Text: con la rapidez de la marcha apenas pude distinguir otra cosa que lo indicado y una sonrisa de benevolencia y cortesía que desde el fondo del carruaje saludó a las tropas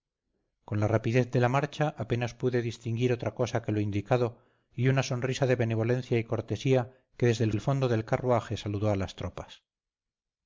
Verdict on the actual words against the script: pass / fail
fail